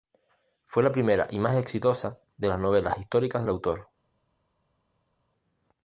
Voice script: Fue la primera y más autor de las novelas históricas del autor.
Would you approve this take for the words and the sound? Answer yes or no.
no